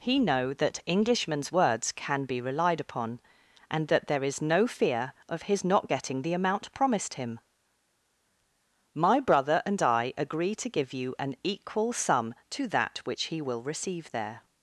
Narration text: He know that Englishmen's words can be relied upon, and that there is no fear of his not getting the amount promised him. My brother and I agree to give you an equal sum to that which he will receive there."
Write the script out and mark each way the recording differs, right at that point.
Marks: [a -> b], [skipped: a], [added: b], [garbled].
He know that Englishmen's words can be relied upon, and that there is no fear of his not getting the amount promised him. My brother and I agree to give you an equal sum to that which he will receive there."